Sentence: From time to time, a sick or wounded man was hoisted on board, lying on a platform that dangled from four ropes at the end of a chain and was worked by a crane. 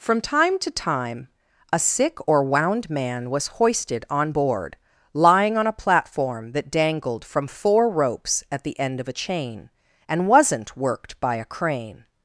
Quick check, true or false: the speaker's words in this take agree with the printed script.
false